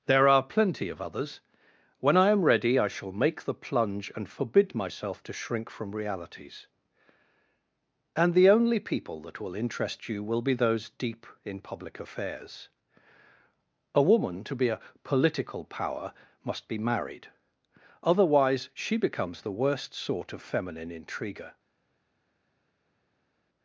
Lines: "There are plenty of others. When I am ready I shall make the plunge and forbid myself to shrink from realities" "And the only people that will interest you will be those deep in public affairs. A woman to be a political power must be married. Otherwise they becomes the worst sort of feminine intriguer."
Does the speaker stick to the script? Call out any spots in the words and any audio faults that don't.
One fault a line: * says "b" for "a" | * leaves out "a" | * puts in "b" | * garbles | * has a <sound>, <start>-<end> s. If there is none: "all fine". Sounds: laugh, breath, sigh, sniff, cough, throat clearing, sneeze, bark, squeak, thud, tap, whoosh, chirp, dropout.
* says "she" for "they"